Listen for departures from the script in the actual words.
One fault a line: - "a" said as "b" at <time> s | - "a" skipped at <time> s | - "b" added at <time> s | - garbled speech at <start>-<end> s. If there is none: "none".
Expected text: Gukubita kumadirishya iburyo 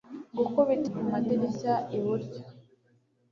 none